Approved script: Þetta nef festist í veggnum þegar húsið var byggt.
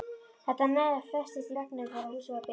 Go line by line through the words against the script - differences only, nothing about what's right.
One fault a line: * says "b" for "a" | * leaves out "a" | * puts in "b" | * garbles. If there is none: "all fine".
all fine